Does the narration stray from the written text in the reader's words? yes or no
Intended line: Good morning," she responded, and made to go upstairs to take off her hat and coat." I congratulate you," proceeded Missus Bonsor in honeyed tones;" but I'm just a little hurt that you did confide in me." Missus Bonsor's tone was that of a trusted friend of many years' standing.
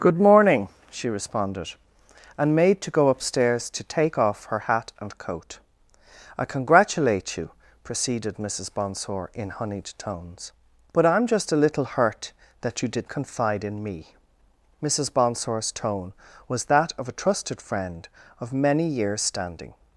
no